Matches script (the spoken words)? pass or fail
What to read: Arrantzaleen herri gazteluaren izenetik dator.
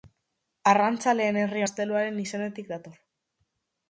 pass